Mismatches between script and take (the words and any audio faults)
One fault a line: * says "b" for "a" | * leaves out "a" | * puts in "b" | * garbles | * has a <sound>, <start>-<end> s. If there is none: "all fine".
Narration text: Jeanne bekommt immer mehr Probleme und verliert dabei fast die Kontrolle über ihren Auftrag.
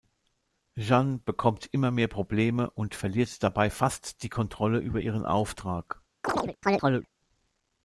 * has a chirp, 6.2-7.1 s